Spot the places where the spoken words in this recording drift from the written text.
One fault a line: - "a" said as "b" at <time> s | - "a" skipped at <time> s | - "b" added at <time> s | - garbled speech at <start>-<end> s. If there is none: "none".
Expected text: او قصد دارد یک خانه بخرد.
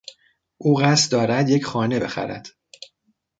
none